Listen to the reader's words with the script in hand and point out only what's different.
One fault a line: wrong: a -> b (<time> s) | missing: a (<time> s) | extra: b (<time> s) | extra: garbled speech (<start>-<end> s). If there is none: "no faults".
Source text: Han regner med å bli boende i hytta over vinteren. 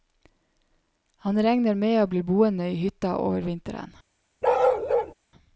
no faults